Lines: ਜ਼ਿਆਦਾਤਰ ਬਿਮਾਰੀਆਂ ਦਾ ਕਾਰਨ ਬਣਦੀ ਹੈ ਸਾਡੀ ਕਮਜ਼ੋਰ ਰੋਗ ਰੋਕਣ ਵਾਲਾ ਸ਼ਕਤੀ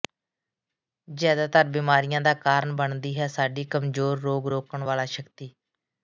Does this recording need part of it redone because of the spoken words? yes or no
no